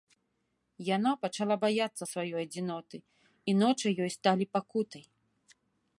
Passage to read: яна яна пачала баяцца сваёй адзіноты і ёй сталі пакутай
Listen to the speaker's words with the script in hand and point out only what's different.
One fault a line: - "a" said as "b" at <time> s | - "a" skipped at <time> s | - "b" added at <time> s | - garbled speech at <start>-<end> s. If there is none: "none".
- "яна" skipped at 1.1 s
- "ночы" added at 3.6 s